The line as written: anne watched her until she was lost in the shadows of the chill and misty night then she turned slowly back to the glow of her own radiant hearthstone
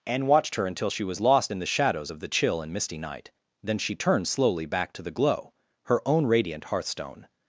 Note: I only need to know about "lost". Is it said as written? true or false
true